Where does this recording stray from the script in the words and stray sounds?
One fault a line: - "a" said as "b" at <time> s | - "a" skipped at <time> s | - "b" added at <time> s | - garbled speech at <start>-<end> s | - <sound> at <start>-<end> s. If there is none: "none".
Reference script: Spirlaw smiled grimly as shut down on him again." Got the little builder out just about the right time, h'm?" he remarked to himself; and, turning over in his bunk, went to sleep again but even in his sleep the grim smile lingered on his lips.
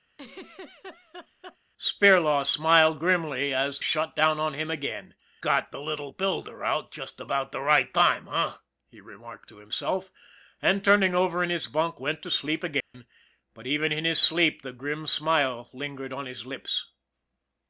- laugh at 0.1-1.6 s
- dropout at 12.8-12.9 s